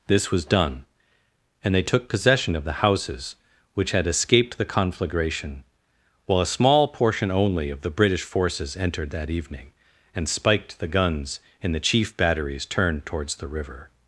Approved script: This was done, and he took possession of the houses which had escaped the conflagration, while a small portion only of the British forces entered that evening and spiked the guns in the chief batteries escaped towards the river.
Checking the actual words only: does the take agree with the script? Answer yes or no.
no